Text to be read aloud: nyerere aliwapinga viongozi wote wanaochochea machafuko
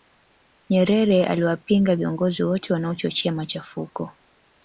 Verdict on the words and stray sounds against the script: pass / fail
pass